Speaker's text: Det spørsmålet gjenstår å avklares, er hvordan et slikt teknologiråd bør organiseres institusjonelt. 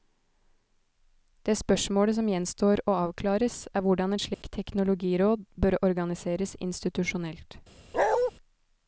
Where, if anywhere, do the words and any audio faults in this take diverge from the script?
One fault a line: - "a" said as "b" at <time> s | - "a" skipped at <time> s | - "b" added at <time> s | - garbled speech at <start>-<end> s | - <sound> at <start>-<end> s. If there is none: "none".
- "som" added at 2.2 s
- dropout at 4.3-4.4 s
- bark at 7.9-8.3 s